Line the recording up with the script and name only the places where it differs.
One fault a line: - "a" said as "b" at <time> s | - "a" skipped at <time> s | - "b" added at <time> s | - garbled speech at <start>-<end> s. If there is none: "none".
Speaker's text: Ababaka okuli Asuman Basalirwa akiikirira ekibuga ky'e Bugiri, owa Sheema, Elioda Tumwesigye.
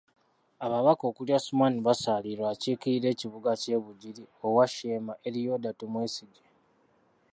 none